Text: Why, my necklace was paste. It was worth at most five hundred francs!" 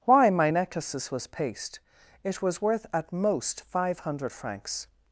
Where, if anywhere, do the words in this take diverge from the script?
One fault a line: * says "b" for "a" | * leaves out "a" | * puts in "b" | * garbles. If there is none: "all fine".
* says "necklaces" for "necklace"